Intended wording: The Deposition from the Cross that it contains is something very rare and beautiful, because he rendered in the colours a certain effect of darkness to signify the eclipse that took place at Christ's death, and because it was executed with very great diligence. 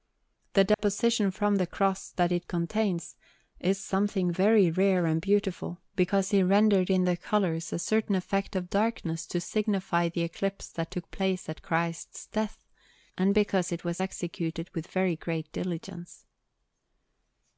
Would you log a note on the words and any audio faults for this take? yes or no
yes